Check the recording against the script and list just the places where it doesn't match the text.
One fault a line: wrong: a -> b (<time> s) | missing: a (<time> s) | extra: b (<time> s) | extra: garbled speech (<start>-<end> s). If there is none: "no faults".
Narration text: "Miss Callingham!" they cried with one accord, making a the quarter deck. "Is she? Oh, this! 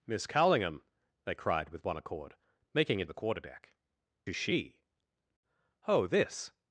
no faults